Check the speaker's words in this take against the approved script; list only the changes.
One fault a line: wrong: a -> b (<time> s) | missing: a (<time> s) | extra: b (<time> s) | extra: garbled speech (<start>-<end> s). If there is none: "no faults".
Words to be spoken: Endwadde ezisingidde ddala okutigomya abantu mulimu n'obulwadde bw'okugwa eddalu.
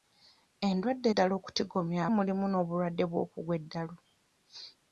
missing: ezisingidde (1.1 s)
missing: abantu (2.0 s)